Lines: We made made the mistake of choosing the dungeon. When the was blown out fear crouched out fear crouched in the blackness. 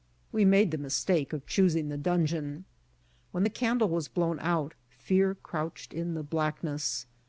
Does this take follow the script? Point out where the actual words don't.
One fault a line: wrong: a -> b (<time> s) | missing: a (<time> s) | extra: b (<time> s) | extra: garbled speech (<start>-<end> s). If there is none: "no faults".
missing: made (0.7 s)
extra: candle (3.5 s)
missing: out fear crouched (5.9 s)